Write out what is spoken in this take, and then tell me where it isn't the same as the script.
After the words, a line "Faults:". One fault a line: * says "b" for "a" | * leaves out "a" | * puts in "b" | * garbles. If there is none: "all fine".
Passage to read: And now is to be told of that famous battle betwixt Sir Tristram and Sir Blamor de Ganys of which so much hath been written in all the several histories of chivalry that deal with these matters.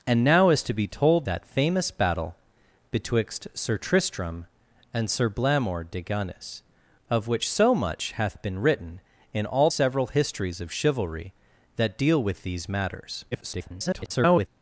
And now is to be told that famous battle betwixt Sir Tristram and Sir Blamor de Ganys of which so much hath been written in all several histories of chivalry that deal with these matters. [garbled]
Faults:
* leaves out "of"
* leaves out "the"
* garbles